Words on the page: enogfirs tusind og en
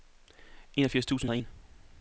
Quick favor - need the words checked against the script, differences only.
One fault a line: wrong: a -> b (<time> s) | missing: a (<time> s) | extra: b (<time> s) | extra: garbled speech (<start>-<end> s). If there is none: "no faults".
no faults